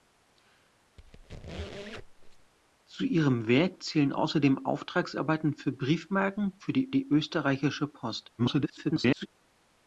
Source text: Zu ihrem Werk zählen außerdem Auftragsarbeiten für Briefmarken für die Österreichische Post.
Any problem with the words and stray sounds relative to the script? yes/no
yes